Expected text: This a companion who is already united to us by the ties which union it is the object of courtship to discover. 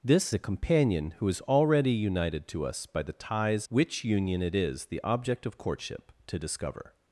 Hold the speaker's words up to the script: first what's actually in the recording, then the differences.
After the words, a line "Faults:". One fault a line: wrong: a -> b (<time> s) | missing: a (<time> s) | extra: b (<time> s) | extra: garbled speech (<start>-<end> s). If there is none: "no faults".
This a companion who is already united to us by the ties which union it is the object of courtship to discover.
Faults:
no faults